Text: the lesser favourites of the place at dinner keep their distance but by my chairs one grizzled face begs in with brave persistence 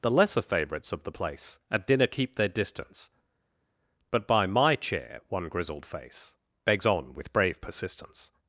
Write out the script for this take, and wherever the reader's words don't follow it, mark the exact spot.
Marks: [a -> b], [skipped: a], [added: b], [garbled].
the lesser favourites of the place at dinner keep their distance but by my [chairs -> chair] one grizzled face begs [in -> on] with brave persistence